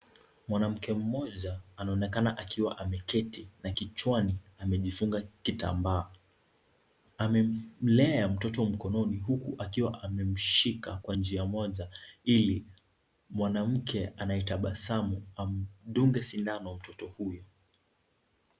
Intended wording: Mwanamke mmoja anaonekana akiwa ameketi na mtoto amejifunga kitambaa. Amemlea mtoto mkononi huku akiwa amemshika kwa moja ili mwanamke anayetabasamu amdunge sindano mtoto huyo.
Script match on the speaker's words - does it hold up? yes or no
no